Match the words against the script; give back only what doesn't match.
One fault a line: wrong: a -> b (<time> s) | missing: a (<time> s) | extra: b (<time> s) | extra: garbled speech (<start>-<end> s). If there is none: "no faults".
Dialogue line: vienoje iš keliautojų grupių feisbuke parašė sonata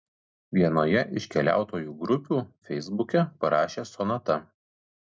no faults